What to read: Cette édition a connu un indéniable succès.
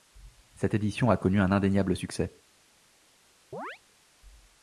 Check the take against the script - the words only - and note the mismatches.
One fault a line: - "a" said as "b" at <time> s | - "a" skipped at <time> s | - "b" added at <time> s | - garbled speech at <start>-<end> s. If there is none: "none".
none